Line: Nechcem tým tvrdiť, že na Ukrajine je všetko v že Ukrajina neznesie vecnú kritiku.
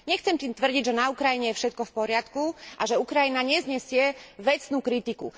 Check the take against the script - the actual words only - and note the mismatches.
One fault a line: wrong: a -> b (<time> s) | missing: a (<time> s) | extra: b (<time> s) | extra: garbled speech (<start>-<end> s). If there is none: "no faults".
extra: poriadku a (1.9 s)